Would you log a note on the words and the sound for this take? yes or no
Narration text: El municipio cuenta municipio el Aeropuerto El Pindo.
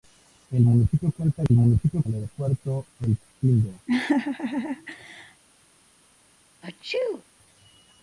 yes